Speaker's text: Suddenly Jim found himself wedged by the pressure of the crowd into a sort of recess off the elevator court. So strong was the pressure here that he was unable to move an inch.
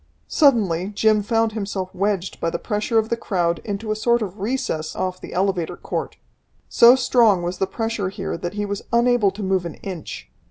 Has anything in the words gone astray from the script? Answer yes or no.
no